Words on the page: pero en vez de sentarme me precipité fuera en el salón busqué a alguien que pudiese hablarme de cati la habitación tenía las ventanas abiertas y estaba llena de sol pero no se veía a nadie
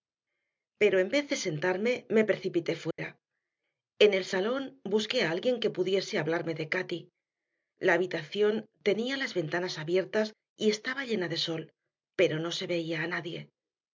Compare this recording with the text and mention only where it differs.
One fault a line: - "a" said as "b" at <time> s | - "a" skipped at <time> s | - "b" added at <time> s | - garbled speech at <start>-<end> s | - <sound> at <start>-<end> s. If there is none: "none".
- dropout at 2.9-3.0 s